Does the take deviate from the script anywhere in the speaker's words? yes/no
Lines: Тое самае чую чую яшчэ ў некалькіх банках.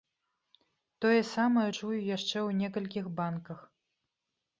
yes